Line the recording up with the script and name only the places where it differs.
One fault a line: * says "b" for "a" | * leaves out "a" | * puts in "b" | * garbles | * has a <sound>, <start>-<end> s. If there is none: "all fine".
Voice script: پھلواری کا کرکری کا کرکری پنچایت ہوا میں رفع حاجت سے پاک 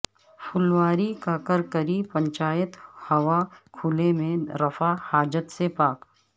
* leaves out "کا کرکری"
* puts in "کھلے"